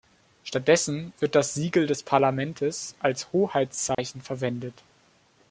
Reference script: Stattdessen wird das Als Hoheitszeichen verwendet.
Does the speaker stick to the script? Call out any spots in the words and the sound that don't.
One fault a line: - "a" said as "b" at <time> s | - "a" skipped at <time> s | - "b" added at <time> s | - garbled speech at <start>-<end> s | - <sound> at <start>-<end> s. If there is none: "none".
- "Siegel des Parlamentes" added at 1.5 s
- dropout at 3.9-4.0 s